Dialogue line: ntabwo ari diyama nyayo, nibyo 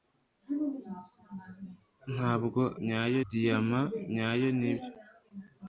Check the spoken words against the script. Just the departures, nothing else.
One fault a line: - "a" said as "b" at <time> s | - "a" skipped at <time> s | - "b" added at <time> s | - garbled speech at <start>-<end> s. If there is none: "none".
- "ari" said as "nyayo" at 2.9 s